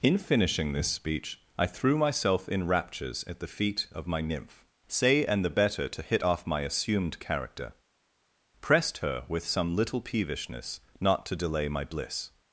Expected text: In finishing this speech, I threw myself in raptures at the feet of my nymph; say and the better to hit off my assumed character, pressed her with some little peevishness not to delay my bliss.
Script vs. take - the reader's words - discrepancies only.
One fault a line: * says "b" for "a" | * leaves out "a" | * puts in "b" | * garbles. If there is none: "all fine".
all fine